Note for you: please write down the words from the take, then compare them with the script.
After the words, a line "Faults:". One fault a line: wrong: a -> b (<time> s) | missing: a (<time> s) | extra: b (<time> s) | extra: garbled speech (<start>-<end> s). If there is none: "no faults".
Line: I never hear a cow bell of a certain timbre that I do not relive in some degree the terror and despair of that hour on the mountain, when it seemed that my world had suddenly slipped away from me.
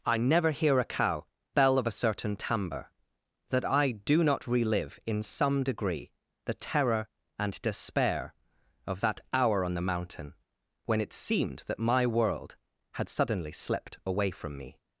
I never hear a cow bell of a certain timbre that I do not relive in some degree the terror and despair of that hour on the mountain, when it seemed that my world had suddenly slipped away from me.
Faults:
no faults